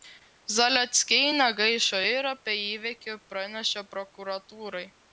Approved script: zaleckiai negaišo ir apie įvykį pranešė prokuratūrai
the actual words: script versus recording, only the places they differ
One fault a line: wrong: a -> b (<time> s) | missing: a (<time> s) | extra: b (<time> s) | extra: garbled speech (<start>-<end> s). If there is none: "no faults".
no faults